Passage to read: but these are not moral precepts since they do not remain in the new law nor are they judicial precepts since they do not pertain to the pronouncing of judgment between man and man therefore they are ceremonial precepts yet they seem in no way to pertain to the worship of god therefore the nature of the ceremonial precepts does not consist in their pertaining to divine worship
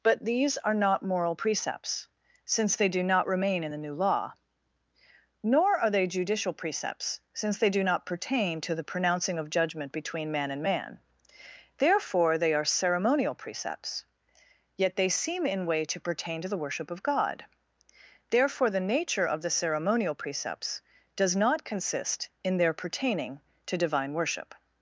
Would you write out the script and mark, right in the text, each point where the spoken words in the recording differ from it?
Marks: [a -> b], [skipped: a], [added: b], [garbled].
but these are not moral precepts since they do not remain in the new law nor are they judicial precepts since they do not pertain to the pronouncing of judgment between man and man therefore they are ceremonial precepts yet they seem in [skipped: no] way to pertain to the worship of god therefore the nature of the ceremonial precepts does not consist in their pertaining to divine worship